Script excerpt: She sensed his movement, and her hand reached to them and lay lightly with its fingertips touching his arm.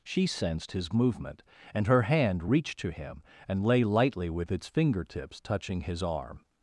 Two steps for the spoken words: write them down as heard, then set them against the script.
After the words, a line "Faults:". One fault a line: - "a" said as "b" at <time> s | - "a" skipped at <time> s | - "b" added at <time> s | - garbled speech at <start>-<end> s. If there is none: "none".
She sensed his movement, and her hand reached to him and lay lightly with its fingertips touching his arm.
Faults:
- "them" said as "him" at 2.9 s